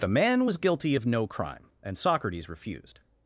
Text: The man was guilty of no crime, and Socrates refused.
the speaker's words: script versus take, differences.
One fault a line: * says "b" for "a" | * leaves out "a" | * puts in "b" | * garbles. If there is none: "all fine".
all fine